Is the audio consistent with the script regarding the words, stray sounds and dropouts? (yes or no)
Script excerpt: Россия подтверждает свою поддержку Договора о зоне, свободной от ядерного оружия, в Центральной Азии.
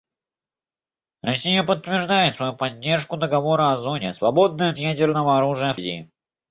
no